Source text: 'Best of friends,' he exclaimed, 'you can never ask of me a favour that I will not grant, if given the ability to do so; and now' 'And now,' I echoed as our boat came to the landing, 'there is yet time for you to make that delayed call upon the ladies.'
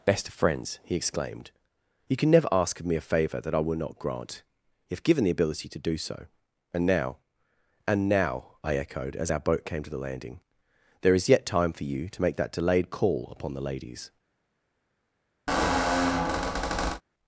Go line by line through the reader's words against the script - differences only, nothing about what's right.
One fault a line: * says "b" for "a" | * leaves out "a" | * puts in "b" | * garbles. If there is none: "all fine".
all fine